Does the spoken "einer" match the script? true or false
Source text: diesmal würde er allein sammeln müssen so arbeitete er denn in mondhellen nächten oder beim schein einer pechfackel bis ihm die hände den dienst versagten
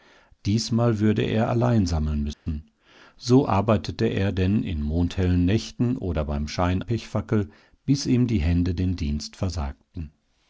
false